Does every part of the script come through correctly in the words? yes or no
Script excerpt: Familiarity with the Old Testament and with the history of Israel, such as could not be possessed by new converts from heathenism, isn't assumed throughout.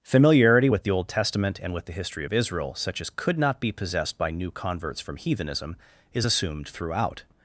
no